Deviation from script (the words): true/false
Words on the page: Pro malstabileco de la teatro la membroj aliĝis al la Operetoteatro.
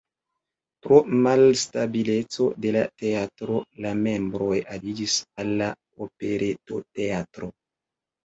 false